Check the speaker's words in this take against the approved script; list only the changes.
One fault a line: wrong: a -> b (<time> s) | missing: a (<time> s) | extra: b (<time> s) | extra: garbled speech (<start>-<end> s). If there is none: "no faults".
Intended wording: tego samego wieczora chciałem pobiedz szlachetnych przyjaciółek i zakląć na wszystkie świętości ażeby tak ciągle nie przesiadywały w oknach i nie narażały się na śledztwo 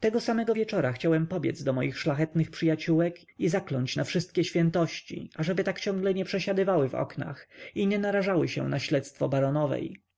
extra: do moich (1.6 s)